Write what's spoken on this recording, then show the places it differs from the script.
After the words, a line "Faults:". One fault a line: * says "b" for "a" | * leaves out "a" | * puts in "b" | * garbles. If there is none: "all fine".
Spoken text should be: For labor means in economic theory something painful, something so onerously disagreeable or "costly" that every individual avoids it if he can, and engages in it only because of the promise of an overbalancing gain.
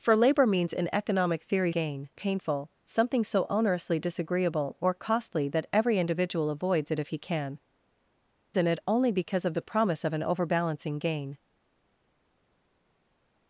For labor means in economic theory gain painful, something so onerously disagreeable or "costly" that every individual avoids it if he can, in it only because of the promise of an overbalancing gain.
Faults:
* says "gain" for "something"
* leaves out "and engages"